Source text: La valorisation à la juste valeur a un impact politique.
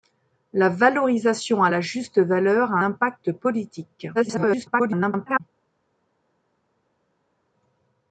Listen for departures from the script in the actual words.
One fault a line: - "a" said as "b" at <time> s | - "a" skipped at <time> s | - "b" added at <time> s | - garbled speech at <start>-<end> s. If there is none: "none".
- "un" skipped at 2.8 s
- garbled speech at 4.1-5.4 s